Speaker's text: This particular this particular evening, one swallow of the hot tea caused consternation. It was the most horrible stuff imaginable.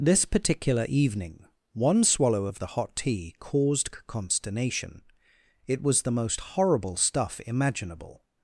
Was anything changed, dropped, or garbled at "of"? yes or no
no